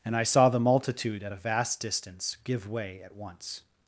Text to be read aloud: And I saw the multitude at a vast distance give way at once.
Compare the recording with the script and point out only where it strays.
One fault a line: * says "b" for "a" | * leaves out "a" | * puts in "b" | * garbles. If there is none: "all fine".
all fine